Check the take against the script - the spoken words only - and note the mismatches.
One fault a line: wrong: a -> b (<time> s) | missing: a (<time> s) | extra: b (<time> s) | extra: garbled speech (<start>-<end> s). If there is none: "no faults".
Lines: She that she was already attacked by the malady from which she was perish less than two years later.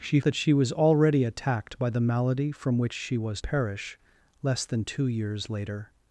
no faults